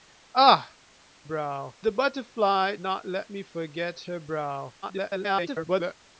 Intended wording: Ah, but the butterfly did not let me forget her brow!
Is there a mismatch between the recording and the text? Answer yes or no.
yes